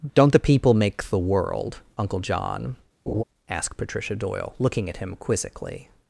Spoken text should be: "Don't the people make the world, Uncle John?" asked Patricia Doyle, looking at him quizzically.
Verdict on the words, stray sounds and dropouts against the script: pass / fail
fail